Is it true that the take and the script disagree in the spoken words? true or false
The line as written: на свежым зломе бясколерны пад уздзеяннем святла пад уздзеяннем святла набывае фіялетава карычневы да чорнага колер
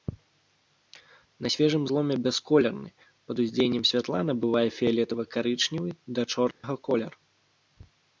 true